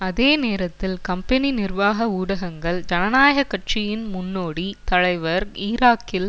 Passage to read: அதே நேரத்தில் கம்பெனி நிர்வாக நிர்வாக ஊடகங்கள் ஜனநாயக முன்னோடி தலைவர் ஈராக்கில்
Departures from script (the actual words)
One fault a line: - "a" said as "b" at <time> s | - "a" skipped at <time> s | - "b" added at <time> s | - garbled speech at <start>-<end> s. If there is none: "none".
- "நிர்வாக" skipped at 2.1 s
- "கட்சியின்" added at 3.4 s